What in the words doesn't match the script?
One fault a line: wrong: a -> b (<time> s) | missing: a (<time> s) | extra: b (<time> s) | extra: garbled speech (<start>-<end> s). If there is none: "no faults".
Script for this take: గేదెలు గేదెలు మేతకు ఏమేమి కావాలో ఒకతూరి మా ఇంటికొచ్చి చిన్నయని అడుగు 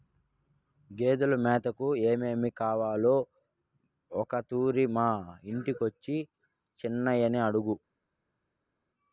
missing: గేదెలు (1.4 s)